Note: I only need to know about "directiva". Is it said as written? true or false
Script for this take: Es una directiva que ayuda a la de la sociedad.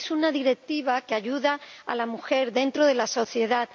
true